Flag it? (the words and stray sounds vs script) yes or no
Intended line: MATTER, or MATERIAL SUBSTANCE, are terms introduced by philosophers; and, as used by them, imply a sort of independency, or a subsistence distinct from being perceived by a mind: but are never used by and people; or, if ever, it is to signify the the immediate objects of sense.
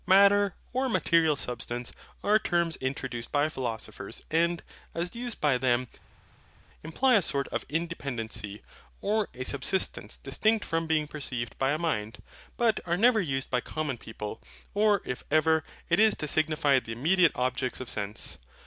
yes